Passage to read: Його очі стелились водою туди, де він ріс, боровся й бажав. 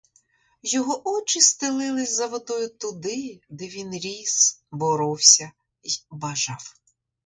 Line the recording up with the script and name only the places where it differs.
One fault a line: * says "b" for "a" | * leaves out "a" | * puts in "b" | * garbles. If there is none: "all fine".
* puts in "за"